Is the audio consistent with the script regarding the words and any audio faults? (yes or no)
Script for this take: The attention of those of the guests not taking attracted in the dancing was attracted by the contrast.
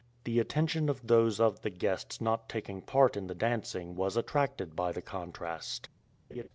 no